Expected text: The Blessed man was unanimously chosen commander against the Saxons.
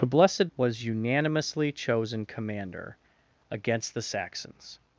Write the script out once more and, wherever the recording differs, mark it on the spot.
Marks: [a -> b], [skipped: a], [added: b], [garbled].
The Blessed [skipped: man] was unanimously chosen commander against the Saxons.